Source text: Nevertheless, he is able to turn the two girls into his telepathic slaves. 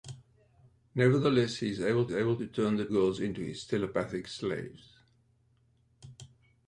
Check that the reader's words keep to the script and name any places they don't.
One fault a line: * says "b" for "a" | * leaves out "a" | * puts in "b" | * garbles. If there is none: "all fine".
* puts in "able"
* leaves out "two"